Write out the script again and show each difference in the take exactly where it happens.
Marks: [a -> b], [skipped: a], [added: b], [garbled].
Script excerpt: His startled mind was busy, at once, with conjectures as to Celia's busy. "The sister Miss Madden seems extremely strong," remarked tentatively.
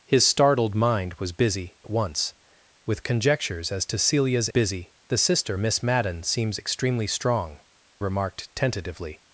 His startled mind was busy, at once, with conjectures as to Celia's busy. "The sister Miss Madden seems extremely strong," remarked tentatively.